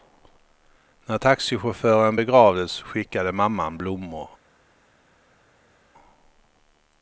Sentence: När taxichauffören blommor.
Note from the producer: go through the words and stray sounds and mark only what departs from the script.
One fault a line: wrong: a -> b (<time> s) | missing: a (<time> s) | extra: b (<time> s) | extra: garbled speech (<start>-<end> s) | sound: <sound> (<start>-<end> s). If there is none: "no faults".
extra: begravdes skickade mamman (2.1 s)